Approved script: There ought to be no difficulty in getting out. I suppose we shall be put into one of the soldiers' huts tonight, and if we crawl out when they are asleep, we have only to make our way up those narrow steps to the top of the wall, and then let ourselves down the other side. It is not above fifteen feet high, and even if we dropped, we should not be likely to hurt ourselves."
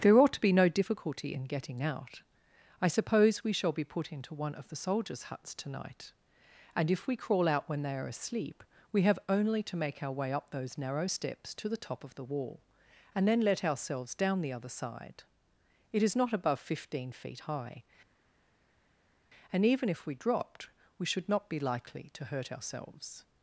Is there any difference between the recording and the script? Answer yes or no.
no